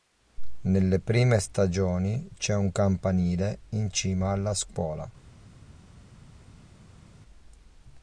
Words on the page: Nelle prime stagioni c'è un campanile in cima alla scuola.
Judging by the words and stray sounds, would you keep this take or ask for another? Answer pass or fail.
pass